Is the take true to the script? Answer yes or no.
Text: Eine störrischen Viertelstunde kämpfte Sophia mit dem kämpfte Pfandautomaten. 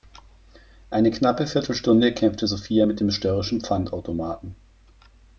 no